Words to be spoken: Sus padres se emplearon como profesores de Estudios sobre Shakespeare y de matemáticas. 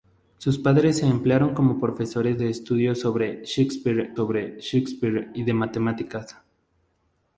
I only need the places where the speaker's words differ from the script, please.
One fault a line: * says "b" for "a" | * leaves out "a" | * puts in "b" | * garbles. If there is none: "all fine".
* puts in "sobre Shakespeare"